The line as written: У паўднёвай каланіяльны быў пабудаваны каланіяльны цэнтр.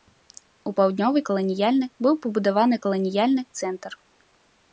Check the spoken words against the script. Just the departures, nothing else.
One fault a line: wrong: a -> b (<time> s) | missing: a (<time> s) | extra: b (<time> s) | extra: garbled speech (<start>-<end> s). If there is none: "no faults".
no faults